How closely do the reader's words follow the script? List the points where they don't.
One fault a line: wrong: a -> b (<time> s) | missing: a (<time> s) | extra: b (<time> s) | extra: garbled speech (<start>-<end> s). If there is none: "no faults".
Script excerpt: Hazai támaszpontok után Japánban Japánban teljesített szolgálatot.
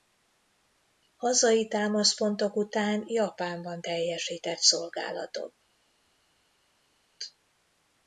missing: Japánban (3.8 s)